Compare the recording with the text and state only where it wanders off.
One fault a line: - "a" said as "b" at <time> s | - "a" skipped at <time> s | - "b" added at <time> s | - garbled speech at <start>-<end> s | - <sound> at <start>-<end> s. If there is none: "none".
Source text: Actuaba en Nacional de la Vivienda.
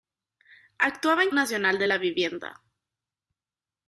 none